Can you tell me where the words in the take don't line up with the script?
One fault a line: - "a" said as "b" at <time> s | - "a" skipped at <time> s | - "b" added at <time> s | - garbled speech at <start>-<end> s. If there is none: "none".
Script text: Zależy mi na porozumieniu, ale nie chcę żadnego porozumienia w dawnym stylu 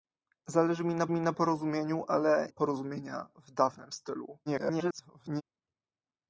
- "mi na" added at 1.1 s
- "nie chcę żadnego" skipped at 2.5 s
- garbled speech at 4.5-5.4 s